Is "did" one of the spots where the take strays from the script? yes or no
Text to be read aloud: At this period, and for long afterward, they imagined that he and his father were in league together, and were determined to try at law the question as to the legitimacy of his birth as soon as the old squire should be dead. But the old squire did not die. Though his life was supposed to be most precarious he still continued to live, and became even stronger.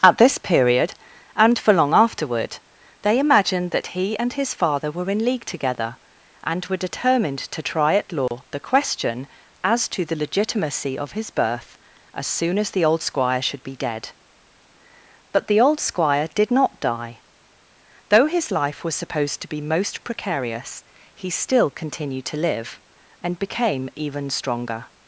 no